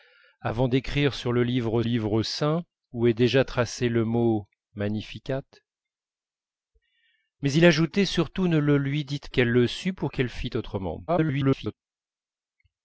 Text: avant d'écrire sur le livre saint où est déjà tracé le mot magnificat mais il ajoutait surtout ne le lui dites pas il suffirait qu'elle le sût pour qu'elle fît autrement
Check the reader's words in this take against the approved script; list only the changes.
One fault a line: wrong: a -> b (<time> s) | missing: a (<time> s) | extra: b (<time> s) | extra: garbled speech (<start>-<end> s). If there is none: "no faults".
extra: livre (1.8 s)
missing: pas il suffirait (9.3 s)
extra: garbled speech (11.1-11.7 s)